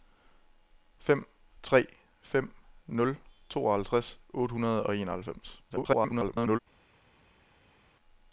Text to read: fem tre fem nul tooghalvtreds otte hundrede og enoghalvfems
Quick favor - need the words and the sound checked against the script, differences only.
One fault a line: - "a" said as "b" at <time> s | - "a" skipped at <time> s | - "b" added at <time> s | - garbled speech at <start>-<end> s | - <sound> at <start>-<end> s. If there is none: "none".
- garbled speech at 5.7-6.6 s